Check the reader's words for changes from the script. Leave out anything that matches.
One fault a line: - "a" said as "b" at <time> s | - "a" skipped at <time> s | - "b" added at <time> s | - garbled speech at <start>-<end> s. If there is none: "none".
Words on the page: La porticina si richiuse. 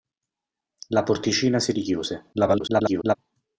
- garbled speech at 2.3-3.2 s